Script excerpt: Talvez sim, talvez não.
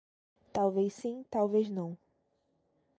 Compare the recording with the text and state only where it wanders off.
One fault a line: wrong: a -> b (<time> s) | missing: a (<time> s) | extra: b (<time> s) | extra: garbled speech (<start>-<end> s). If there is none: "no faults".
no faults